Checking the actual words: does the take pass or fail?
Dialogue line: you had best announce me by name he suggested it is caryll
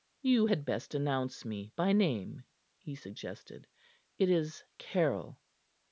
pass